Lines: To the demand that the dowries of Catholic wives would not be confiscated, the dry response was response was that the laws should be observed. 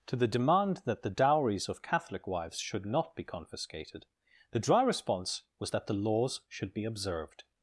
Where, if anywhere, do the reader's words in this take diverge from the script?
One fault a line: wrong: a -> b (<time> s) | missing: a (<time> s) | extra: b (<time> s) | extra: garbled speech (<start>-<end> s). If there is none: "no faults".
wrong: would -> should (2.6 s)
missing: response was (5.7 s)